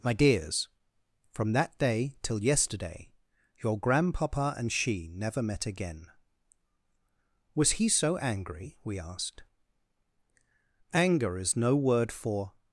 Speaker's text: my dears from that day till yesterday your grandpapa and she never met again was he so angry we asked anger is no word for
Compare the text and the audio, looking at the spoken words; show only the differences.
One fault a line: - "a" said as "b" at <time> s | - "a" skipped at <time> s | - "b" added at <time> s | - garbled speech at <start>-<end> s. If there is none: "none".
none